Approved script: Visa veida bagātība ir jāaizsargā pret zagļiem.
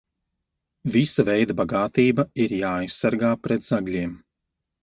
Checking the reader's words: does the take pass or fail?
pass